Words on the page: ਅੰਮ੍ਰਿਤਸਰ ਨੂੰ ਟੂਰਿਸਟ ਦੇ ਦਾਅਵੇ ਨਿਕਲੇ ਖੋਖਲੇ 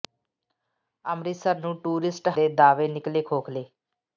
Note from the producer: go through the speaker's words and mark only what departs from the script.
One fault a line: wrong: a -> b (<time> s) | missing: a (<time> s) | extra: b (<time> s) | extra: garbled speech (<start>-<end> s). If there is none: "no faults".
no faults